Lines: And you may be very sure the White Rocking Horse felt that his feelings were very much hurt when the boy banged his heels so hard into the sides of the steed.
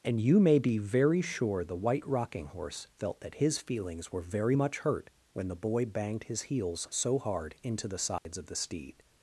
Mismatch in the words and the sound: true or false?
true